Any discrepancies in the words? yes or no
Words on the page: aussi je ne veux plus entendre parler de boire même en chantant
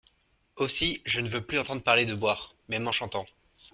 no